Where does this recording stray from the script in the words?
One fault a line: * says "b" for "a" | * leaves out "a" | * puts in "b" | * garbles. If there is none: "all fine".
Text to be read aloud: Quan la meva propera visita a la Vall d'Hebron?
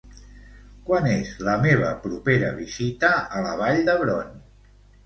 * puts in "és"